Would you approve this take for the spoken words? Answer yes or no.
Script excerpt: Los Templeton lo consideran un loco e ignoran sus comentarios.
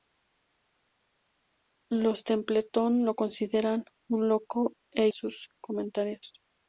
no